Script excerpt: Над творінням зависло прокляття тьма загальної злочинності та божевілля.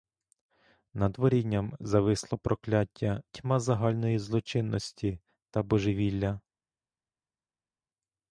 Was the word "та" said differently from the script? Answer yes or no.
no